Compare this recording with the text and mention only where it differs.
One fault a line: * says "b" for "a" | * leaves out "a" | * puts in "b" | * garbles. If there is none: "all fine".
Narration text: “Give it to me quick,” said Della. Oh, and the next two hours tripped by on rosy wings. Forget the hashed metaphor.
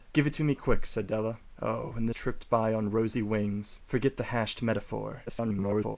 * leaves out "next two hours"
* garbles